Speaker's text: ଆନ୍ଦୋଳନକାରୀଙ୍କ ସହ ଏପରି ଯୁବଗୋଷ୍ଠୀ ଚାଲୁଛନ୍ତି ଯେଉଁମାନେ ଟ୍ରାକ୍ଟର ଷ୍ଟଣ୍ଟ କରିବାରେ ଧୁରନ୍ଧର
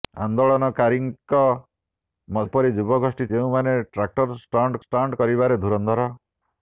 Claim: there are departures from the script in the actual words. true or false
true